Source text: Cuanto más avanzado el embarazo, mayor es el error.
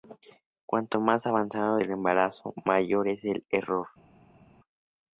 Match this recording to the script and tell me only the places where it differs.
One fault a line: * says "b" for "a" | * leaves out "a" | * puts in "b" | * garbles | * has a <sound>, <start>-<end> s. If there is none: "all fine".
all fine